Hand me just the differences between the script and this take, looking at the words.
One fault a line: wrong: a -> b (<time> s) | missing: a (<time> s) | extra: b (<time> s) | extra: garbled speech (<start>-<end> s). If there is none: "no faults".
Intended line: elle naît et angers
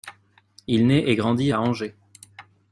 wrong: elle -> il (0.7 s)
extra: grandit à (1.1 s)